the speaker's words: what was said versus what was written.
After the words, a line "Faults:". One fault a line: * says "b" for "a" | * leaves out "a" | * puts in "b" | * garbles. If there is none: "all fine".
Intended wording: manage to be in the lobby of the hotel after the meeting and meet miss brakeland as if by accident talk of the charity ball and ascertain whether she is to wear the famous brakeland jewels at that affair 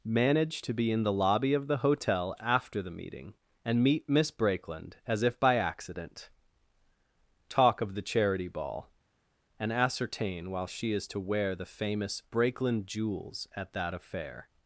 manage to be in the lobby of the hotel after the meeting and meet miss brakeland as if by accident talk of the charity ball and ascertain while she is to wear the famous brakeland jewels at that affair
Faults:
* says "while" for "whether"